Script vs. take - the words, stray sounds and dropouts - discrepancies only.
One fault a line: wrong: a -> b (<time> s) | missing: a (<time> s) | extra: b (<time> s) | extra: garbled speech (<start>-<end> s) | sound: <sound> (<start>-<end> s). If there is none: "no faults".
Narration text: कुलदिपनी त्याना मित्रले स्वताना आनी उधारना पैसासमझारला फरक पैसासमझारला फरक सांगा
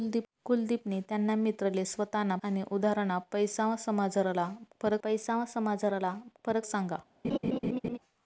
sound: laugh (7.2-8.0 s)